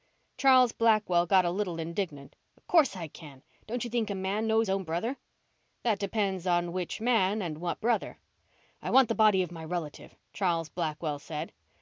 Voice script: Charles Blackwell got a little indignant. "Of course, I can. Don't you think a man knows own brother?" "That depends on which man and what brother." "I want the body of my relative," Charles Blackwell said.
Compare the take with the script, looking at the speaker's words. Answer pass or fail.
pass